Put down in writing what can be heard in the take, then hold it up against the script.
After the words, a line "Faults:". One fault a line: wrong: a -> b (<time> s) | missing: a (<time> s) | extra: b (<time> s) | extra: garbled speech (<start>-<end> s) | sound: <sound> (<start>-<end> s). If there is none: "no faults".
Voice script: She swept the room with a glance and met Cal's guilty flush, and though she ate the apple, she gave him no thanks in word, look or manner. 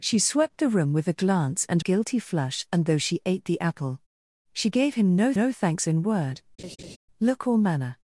She swept the room with a glance and guilty flush, and though she ate the apple, she gave him no no thanks in word, look or manner.
Faults:
missing: met Cal's (1.9 s)
extra: no (5.3 s)
sound: laugh (6.6-7.0 s)